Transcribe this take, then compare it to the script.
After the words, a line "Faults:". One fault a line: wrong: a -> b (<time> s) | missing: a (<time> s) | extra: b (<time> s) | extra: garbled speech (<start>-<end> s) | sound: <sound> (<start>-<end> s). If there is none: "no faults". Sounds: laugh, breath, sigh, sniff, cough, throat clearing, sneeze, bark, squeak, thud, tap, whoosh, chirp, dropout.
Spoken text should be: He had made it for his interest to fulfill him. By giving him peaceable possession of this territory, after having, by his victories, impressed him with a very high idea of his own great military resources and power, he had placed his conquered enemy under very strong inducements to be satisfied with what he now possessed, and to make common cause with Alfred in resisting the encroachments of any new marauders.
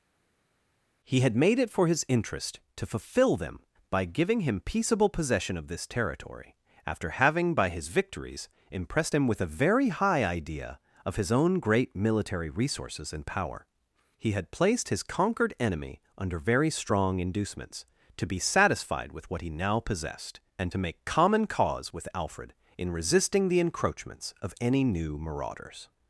He had made it for his interest to fulfill them. By giving him peaceable possession of this territory, after having, by his victories, impressed him with a very high idea of his own great military resources and power, he had placed his conquered enemy under very strong inducements to be satisfied with what he now possessed, and to make common cause with Alfred in resisting the encroachments of any new marauders.
Faults:
wrong: him -> them (3.4 s)